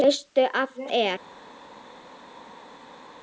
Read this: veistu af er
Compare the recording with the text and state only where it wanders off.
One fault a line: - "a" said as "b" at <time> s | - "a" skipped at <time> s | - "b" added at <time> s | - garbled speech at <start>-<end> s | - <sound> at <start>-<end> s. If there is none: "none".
none